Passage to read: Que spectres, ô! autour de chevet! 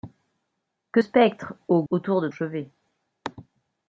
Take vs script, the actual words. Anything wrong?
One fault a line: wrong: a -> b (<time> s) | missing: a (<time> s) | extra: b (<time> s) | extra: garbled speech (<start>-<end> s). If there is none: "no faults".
no faults